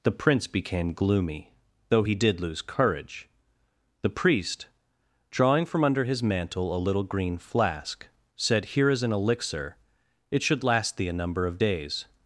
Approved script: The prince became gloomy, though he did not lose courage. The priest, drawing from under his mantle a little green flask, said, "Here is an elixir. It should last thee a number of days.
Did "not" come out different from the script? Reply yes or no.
yes